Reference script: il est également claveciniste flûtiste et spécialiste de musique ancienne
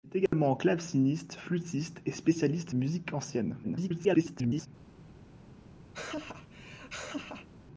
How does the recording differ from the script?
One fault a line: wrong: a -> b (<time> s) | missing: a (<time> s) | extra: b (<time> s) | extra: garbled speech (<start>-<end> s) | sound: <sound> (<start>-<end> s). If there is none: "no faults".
sound: dropout (0.3-0.3 s)
missing: de (2.8 s)
extra: garbled speech (3.6-4.7 s)
sound: laugh (5.9-7.5 s)